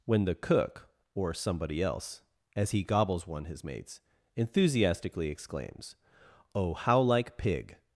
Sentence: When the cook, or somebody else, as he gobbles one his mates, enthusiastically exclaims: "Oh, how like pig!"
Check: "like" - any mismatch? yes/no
no